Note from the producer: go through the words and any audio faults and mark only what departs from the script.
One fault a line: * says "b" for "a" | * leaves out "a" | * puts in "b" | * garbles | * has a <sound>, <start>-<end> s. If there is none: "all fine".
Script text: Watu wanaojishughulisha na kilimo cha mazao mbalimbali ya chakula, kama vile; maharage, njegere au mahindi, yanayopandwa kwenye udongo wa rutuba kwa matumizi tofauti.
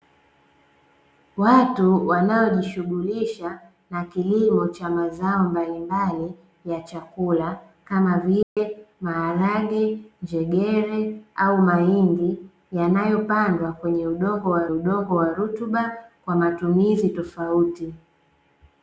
* has a dropout, 8.4-8.6 s
* puts in "udongo wa"